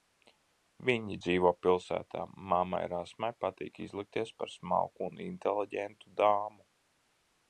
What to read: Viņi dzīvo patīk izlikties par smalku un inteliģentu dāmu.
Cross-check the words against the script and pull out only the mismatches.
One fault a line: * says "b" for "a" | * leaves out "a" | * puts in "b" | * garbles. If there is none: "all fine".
* puts in "pilsētā mammai Rasmai"